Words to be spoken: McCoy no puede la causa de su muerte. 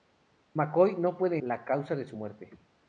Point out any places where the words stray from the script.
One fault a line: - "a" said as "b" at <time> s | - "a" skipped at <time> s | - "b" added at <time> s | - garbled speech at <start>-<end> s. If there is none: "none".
none